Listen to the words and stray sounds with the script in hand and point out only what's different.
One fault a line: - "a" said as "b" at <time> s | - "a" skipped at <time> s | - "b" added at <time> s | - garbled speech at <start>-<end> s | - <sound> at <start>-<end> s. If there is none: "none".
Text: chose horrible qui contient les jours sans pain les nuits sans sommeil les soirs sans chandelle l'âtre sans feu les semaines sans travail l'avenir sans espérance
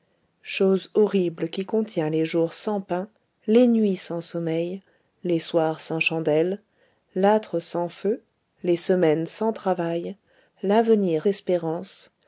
- "sans" skipped at 11.3 s